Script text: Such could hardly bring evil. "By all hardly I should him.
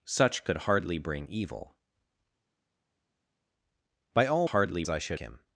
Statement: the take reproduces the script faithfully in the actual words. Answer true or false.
true